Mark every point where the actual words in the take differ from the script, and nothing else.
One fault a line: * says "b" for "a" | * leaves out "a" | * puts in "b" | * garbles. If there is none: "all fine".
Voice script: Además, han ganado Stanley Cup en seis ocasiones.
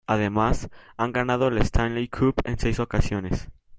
* puts in "la"